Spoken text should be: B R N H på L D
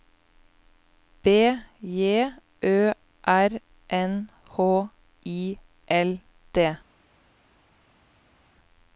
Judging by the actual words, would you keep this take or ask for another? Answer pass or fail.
fail